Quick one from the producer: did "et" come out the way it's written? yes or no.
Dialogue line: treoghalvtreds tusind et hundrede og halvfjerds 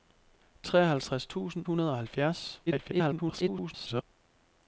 no